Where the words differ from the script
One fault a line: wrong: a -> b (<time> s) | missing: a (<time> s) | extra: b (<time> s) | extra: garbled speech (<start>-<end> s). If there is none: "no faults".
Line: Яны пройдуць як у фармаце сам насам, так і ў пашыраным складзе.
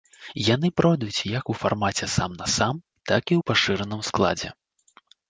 no faults